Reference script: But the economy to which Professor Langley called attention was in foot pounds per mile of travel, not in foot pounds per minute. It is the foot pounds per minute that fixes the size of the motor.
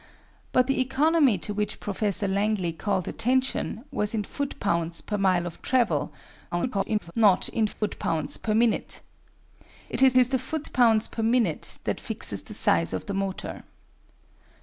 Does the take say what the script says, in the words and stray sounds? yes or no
no